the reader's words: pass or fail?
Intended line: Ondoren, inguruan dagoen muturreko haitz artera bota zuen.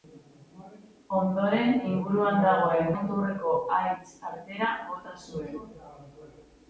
pass